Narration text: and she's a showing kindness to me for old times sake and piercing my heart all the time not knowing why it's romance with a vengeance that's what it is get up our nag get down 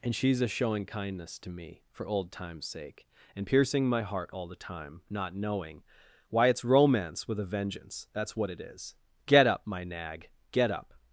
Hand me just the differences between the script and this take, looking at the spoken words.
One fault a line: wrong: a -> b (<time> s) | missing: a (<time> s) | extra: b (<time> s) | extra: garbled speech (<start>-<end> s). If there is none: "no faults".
wrong: our -> my (9.6 s)
wrong: down -> up (10.7 s)